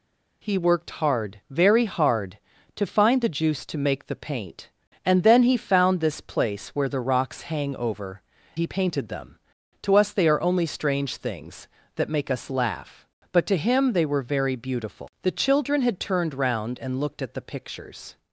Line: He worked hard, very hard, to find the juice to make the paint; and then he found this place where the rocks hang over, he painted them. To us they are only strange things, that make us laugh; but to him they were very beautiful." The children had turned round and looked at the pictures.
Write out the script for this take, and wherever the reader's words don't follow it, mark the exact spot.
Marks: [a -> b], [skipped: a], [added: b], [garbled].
He worked hard, very hard, to find the juice to make the paint; and then he found this place where the rocks hang over, he painted them. To us they are only strange things, that make us laugh; but to him they were very beautiful." The children had turned round and looked at the pictures.